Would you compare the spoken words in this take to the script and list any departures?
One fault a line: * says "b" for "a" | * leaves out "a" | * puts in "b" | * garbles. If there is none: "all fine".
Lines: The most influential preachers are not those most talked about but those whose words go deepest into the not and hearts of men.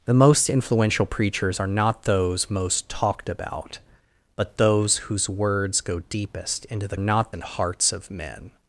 all fine